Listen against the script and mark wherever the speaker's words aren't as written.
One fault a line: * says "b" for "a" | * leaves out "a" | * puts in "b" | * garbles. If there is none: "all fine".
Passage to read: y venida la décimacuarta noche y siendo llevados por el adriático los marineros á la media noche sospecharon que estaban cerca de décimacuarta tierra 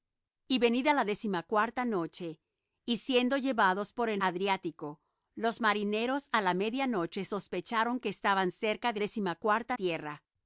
all fine